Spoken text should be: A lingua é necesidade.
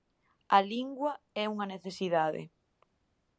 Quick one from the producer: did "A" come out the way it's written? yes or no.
yes